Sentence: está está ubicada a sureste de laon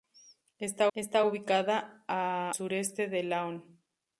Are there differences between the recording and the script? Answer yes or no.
no